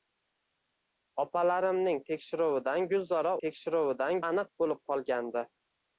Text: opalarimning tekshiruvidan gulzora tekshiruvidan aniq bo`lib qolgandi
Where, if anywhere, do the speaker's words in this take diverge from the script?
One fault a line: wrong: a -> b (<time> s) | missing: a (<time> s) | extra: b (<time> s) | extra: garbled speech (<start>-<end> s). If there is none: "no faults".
no faults